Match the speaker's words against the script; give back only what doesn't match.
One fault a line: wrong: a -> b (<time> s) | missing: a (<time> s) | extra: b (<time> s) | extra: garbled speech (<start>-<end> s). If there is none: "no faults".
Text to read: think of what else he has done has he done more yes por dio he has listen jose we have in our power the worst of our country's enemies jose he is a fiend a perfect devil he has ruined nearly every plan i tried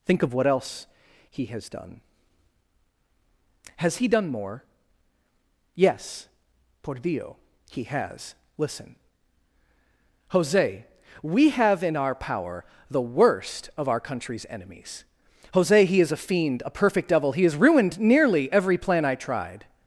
no faults